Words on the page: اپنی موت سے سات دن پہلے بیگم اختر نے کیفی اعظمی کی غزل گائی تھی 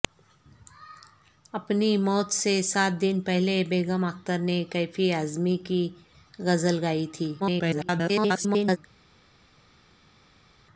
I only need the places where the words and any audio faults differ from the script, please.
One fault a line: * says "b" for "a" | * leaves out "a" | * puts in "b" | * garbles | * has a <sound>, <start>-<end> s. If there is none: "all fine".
* garbles